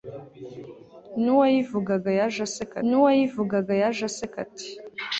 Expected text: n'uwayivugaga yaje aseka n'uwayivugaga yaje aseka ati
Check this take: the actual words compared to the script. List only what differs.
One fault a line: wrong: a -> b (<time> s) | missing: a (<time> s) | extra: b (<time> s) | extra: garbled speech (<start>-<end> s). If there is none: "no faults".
no faults